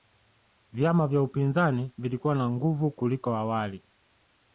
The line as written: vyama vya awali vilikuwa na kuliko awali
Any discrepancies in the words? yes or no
yes